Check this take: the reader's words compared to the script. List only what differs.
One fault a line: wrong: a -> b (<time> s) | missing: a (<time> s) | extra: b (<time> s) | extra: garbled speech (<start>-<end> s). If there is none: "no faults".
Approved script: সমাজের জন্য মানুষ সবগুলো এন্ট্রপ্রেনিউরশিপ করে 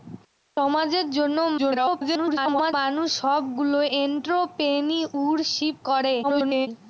extra: garbled speech (1.6-2.7 s)
extra: garbled speech (6.2-6.7 s)